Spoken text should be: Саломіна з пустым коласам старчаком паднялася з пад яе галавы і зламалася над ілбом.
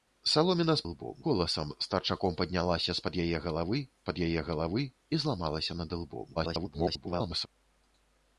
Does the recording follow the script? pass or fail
fail